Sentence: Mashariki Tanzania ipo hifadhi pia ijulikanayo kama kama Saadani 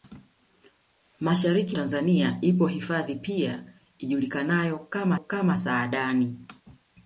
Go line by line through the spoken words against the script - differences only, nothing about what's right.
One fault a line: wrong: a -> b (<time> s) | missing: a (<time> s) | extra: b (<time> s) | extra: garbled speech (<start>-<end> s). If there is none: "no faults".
no faults